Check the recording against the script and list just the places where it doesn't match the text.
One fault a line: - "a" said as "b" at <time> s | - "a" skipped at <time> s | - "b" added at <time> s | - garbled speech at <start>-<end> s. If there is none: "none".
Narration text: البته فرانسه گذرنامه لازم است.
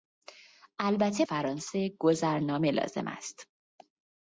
none